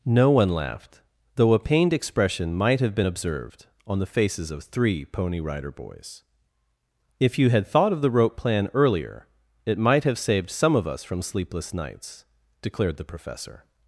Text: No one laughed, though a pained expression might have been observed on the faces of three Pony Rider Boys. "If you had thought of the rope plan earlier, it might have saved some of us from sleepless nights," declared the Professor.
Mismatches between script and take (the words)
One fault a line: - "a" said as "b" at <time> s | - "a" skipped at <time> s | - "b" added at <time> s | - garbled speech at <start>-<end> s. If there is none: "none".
none